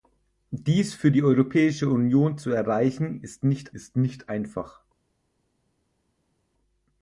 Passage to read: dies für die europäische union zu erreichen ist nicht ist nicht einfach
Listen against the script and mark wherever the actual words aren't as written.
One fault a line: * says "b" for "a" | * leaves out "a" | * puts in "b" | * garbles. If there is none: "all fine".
all fine